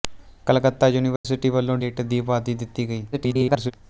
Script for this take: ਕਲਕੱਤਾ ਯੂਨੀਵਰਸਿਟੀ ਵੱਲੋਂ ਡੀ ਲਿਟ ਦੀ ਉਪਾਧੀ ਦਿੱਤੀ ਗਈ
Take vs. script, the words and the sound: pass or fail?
fail